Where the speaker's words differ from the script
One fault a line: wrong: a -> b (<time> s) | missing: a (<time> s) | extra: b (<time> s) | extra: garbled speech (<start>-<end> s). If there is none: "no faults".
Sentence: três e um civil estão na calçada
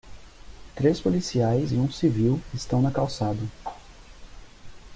extra: policiais (1.0 s)